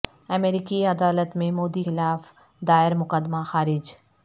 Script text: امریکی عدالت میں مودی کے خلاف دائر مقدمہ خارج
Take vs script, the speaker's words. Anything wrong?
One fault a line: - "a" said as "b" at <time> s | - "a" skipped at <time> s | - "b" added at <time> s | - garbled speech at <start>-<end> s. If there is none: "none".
- "کے" skipped at 1.8 s